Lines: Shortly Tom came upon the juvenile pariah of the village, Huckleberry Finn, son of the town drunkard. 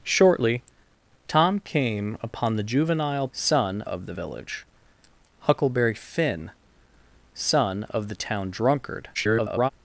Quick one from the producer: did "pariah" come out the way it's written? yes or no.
no